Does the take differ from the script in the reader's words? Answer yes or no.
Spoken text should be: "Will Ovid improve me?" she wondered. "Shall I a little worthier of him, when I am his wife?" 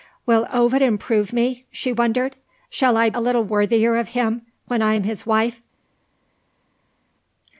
no